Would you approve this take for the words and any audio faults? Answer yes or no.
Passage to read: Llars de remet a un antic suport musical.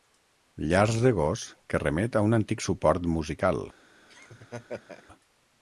no